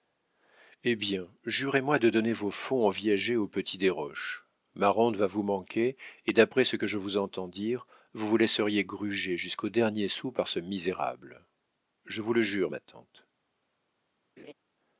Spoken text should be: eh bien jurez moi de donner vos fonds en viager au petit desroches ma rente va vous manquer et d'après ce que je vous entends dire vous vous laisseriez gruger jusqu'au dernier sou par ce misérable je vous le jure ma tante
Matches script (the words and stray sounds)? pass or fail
fail